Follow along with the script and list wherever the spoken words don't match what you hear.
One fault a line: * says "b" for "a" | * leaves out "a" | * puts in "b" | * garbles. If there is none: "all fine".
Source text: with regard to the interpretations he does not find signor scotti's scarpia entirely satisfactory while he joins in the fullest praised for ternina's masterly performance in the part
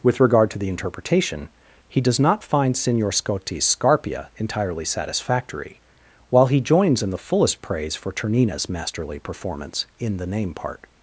* says "interpretation" for "interpretations"
* says "praise" for "praised"
* puts in "name"